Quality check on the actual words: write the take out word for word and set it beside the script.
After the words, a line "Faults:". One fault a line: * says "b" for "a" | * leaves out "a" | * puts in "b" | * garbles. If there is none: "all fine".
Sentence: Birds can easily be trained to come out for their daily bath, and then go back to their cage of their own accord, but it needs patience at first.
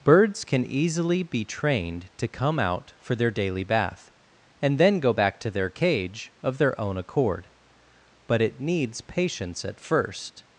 Birds can easily be trained to come out for their daily bath, and then go back to their cage of their own accord, but it needs patience at first.
Faults:
all fine